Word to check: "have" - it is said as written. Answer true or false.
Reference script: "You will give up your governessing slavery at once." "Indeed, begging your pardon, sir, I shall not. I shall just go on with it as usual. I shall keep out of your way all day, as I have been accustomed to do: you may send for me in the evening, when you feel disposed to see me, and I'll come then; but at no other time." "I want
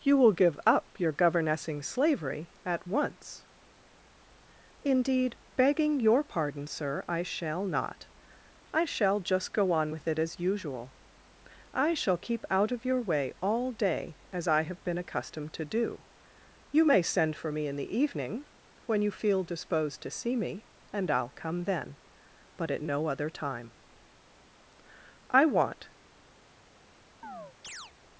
true